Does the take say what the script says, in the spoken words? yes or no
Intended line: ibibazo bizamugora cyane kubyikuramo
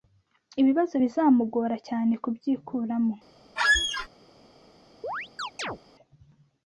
yes